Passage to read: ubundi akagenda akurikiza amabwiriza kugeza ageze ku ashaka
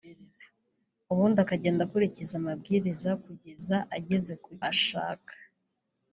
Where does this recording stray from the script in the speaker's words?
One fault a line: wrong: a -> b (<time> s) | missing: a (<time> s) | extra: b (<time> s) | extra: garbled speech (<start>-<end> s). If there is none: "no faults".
no faults